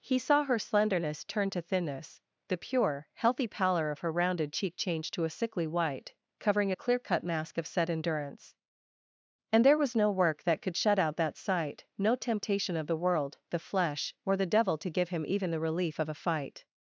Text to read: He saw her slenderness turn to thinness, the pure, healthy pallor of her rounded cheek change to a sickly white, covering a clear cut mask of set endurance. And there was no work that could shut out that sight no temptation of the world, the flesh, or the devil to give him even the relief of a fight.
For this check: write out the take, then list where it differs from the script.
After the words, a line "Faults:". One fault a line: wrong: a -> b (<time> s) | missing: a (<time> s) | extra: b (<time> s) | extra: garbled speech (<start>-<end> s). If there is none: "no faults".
He saw her slenderness turn to thinness, the pure, healthy pallor of her rounded cheek change to a sickly white, covering a clear cut mask of set endurance. And there was no work that could shut out that sight no temptation of the world, the flesh, or the devil to give him even the relief of a fight.
Faults:
no faults